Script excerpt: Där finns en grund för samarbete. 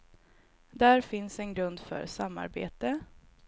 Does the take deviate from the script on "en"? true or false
false